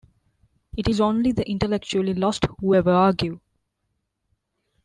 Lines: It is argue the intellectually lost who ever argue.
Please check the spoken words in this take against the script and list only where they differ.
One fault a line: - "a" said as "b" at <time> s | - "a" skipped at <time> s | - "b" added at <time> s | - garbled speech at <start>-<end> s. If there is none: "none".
- "argue" said as "only" at 1.0 s